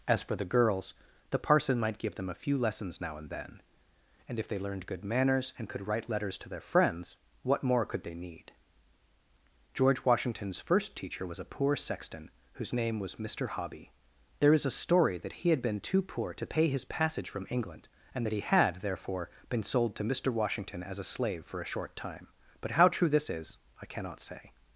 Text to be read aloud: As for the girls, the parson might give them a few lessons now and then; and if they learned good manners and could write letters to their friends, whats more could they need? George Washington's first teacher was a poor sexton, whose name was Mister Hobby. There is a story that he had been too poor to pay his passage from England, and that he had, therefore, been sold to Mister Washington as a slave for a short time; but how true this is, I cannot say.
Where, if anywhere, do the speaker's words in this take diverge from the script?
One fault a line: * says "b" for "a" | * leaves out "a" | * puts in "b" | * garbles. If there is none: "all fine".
* says "what" for "whats"